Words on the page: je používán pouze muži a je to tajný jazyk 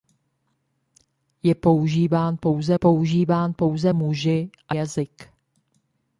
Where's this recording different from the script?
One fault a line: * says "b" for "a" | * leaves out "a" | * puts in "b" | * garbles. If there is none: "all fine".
* puts in "používán pouze"
* leaves out "je to tajný"